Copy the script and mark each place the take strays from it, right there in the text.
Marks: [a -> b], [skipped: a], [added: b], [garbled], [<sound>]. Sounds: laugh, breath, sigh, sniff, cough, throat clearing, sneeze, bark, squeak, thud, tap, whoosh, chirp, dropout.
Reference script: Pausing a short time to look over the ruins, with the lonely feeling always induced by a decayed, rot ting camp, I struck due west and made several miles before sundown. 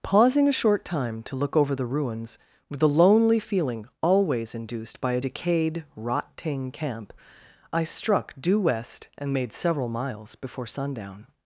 Pausing a short time to look over the ruins, with the lonely feeling always induced by a decayed, rot ting camp, I struck due west and made several miles before sundown.